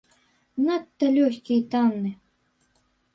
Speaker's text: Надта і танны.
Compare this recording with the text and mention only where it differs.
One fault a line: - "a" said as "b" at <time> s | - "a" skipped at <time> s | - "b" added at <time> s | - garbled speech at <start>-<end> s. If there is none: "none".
- "лёгкі" added at 1.2 s